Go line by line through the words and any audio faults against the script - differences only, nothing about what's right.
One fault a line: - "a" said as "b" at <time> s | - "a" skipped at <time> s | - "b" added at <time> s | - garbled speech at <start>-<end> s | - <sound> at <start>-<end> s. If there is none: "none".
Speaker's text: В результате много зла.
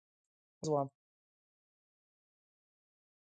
- "результате много" skipped at 0.7 s